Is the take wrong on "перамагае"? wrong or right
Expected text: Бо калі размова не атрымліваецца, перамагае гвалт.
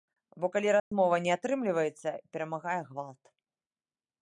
right